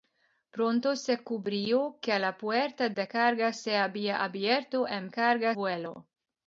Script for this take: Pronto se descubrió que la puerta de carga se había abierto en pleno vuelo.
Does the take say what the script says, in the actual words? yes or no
no